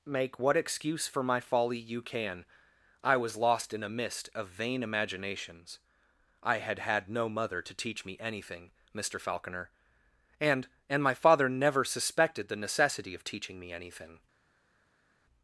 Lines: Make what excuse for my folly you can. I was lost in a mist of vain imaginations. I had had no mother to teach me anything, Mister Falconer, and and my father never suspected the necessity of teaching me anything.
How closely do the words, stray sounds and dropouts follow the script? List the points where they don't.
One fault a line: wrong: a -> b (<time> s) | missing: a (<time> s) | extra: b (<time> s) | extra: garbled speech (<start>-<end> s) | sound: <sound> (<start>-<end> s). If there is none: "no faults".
no faults